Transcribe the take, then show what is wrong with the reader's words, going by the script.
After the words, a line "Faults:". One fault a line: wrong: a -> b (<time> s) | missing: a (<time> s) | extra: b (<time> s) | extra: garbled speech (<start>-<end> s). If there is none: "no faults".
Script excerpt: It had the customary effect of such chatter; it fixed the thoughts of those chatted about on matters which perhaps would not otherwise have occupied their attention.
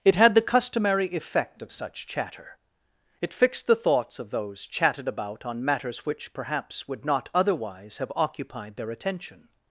It had the customary effect of such chatter; it fixed the thoughts of those chatted about on matters which perhaps would not otherwise have occupied their attention.
Faults:
no faults